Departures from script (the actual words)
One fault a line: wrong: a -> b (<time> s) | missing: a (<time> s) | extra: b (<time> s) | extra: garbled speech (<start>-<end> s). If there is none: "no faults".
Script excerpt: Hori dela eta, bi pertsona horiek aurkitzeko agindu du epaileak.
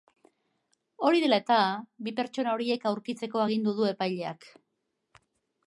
no faults